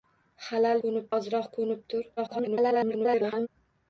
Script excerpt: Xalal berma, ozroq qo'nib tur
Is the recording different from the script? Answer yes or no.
yes